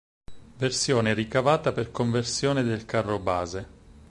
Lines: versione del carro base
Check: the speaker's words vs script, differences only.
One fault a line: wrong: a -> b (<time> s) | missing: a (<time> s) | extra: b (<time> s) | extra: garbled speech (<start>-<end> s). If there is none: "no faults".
extra: ricavata per conversione (1.1 s)